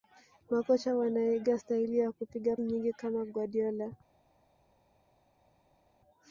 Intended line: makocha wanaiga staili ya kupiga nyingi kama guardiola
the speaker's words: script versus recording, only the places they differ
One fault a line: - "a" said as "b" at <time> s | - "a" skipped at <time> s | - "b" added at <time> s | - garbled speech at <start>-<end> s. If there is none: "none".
none